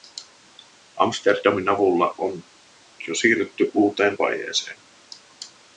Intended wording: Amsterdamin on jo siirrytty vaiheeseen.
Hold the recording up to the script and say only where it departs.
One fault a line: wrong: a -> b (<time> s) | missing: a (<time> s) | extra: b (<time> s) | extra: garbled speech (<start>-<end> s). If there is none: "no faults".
extra: avulla (1.7 s)
extra: uuteen (3.7 s)